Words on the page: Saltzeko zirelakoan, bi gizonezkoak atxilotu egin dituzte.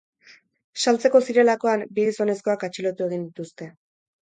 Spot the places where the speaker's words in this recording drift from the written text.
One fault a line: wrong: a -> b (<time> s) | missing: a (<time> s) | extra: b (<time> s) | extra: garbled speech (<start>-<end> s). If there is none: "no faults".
no faults